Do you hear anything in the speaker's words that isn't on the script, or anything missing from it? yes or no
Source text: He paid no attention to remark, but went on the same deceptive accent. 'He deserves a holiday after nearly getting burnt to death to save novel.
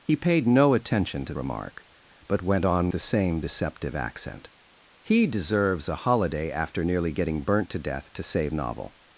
no